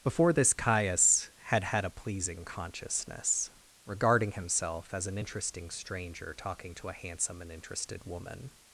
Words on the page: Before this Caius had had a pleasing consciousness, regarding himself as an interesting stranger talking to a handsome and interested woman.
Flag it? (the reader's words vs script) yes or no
no